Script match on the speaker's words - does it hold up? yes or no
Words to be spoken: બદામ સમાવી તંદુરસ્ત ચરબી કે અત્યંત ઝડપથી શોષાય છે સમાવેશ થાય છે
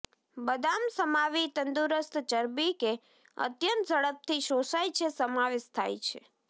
yes